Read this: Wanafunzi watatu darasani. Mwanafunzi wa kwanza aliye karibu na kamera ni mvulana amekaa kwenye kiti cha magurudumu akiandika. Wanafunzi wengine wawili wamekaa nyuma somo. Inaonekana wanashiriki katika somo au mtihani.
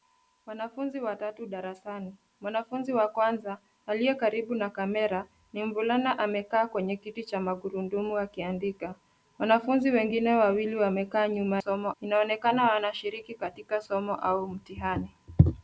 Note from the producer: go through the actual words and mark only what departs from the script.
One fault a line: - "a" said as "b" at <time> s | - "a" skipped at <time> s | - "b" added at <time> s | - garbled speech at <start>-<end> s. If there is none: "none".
none